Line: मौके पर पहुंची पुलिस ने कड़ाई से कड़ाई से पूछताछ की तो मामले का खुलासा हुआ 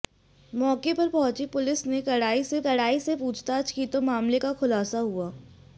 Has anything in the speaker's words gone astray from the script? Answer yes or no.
no